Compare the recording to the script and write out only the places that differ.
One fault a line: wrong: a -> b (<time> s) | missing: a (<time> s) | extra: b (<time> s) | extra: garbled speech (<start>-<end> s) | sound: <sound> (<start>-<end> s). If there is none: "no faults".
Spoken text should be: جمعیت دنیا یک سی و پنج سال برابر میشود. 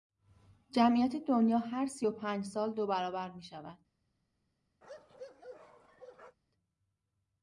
wrong: یک -> هر (1.6 s)
extra: دو (2.7 s)
sound: bark (4.8-6.4 s)